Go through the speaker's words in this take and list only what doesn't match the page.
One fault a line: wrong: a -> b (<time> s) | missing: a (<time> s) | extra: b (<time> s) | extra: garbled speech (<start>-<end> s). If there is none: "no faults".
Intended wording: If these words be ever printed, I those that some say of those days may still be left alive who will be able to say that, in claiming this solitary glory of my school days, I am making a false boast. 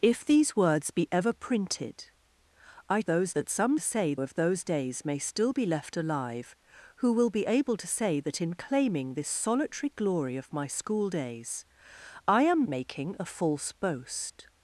no faults